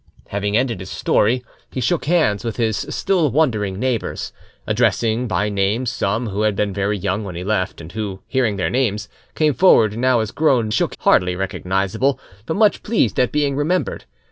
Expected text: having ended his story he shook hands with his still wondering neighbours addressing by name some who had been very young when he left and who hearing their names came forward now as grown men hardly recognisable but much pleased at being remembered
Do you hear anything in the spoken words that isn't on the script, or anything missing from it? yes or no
yes